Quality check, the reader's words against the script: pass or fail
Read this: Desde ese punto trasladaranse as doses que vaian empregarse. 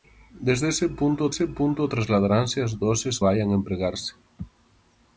fail